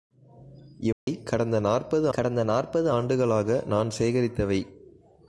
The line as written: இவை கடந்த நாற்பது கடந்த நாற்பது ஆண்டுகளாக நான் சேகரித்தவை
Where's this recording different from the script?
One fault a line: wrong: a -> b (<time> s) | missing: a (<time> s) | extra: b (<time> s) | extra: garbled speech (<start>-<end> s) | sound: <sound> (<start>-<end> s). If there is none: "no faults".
sound: dropout (0.9-1.1 s)